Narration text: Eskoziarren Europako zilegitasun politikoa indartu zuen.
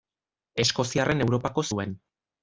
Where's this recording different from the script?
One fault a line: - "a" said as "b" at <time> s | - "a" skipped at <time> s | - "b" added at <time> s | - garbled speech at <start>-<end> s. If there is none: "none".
- "zilegitasun politikoa indartu" skipped at 1.6 s